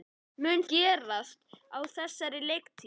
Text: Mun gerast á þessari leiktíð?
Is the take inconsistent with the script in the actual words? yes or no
no